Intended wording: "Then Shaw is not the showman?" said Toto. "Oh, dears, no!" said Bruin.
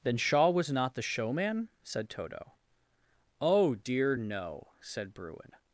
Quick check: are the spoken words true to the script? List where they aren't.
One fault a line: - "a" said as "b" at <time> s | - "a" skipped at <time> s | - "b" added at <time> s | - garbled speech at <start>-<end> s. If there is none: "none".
- "is" said as "was" at 0.5 s
- "dears" said as "dear" at 3.8 s